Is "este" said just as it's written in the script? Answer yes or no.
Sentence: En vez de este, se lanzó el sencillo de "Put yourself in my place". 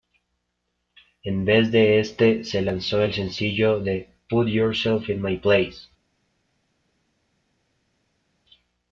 yes